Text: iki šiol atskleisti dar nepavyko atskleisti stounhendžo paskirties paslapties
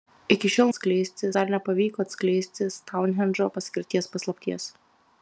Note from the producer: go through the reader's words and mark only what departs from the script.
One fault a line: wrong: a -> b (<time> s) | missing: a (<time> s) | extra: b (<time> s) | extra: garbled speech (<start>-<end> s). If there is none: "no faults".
no faults